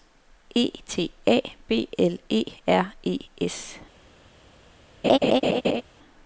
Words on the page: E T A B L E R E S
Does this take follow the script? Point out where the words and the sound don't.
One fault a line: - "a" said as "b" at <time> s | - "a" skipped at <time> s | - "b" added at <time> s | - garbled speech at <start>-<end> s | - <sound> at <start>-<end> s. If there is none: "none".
- laugh at 5.0-5.8 s